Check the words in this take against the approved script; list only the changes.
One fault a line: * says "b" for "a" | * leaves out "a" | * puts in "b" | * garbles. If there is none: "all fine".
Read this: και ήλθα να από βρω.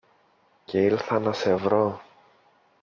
* says "σε" for "από"